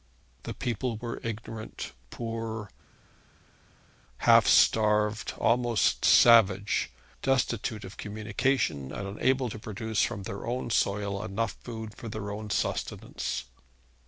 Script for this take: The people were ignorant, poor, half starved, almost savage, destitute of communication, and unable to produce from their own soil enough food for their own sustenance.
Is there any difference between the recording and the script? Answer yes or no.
no